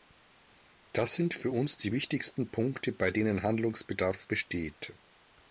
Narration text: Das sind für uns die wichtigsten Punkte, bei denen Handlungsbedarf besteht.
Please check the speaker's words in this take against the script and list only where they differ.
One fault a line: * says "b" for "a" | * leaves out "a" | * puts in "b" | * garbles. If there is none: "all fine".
all fine